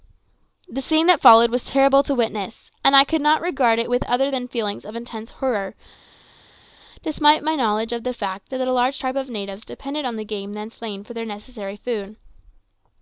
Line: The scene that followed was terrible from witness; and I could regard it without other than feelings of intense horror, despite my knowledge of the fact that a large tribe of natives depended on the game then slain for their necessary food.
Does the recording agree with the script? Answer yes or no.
no